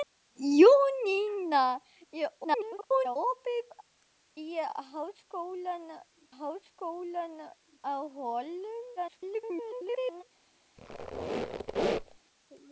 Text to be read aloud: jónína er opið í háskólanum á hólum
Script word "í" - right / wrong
right